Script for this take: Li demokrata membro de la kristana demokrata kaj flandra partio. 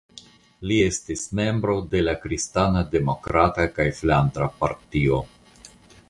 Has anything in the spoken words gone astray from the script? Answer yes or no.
yes